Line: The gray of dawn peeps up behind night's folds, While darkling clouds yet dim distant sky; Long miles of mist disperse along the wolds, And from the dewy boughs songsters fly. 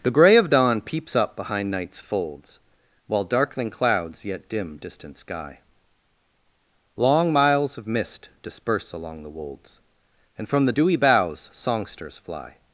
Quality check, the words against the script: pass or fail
pass